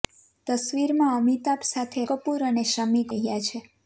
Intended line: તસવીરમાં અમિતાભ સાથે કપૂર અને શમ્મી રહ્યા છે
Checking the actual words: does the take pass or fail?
pass